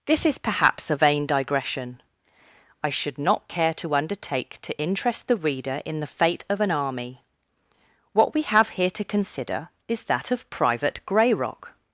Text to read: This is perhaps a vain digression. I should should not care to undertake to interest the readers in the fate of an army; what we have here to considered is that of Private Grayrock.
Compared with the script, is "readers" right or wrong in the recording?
wrong